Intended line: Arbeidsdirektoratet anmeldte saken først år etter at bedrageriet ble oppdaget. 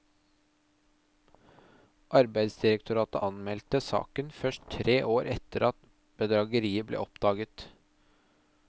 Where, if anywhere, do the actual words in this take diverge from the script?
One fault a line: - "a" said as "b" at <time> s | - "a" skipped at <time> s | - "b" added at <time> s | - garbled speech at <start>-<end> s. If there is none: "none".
- "tre" added at 4.8 s